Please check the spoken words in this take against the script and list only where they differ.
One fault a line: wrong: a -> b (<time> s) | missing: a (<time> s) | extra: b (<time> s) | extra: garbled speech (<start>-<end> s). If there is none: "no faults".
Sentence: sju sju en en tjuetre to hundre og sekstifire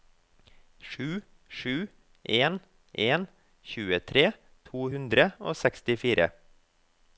no faults